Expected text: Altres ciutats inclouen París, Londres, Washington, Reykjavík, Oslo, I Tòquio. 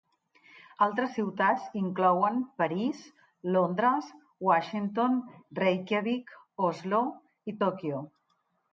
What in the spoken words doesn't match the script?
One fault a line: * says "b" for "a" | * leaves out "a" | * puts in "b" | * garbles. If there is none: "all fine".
all fine